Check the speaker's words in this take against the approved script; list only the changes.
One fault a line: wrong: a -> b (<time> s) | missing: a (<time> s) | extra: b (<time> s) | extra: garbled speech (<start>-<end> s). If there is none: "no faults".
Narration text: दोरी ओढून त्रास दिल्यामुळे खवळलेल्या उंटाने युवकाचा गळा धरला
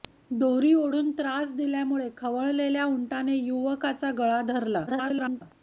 extra: garbled speech (4.9-5.4 s)